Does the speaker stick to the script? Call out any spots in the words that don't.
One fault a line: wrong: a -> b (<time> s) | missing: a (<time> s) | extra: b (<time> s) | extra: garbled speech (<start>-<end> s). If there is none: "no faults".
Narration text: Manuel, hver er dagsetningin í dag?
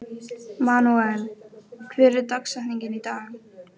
no faults